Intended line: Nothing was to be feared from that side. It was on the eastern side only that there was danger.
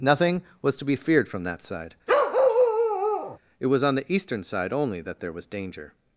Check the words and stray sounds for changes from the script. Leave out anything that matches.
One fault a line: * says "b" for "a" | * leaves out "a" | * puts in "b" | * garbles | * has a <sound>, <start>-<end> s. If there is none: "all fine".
* has a bark, 2.1-3.4 s